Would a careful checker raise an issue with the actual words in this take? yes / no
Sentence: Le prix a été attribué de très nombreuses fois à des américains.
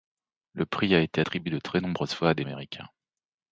no